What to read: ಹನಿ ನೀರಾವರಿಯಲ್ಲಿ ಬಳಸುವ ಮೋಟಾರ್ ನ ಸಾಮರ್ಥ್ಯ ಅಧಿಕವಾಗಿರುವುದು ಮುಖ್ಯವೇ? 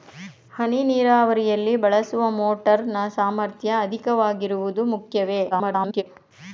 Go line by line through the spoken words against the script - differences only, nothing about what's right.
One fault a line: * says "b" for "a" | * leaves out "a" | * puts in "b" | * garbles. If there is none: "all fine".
* garbles